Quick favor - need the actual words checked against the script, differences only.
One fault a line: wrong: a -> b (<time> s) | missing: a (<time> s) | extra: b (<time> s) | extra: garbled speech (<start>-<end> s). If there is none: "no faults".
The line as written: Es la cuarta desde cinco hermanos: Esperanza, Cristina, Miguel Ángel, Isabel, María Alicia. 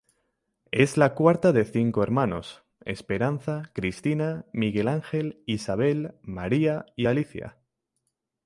wrong: desde -> de (1.5 s)
extra: y (7.0 s)